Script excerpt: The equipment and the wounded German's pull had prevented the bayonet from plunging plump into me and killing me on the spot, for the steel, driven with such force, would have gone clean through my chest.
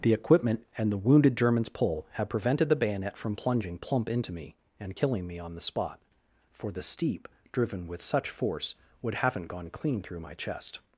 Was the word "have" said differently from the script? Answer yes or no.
yes